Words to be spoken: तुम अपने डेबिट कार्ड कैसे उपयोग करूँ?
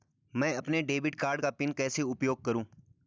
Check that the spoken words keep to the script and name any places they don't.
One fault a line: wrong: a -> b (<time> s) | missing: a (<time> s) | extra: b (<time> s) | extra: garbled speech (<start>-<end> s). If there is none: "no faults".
wrong: तुम -> मैं (0.3 s)
extra: का पिन (1.4 s)